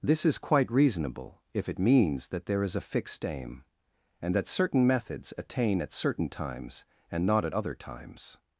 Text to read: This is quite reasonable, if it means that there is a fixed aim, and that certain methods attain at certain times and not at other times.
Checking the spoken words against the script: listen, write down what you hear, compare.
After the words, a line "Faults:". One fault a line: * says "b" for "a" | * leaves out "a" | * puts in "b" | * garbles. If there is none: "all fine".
This is quite reasonable, if it means that there is a fixed aim, and that certain methods attain at certain times and not at other times.
Faults:
all fine